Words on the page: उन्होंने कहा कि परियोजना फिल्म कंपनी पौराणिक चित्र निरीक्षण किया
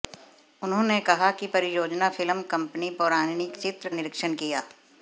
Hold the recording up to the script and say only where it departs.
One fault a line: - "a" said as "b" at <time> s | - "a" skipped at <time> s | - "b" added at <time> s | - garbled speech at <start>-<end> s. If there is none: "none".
none